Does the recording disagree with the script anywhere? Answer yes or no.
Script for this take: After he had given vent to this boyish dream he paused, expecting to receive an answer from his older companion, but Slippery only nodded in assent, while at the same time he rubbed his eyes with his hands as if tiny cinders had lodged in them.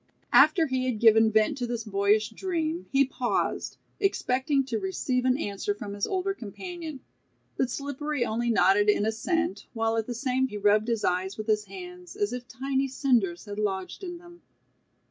yes